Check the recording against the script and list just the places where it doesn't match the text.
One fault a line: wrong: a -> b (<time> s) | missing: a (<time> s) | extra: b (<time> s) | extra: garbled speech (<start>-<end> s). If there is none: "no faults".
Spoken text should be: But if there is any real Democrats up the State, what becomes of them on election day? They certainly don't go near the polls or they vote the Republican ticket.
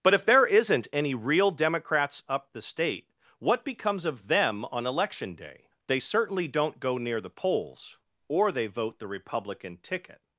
wrong: is -> isn't (0.5 s)